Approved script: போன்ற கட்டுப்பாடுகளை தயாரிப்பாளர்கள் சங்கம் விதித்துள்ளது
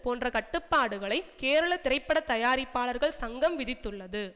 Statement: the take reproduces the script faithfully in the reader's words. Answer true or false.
false